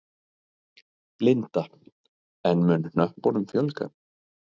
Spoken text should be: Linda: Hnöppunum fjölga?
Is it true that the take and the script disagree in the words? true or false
true